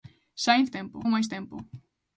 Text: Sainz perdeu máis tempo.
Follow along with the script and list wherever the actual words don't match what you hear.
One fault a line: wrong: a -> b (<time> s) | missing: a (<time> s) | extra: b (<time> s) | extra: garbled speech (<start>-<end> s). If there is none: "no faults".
wrong: perdeu -> tempo (0.7 s)